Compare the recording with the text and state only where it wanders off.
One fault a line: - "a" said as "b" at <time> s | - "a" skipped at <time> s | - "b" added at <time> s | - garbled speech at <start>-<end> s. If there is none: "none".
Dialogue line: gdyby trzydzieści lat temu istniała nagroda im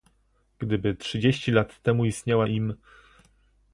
- "nagroda" skipped at 2.5 s